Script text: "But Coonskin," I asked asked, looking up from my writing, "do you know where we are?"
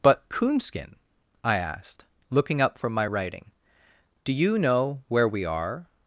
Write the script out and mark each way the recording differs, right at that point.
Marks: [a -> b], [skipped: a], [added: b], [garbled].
"But Coonskin," I asked [skipped: asked,] looking up from my writing, "do you know where we are?"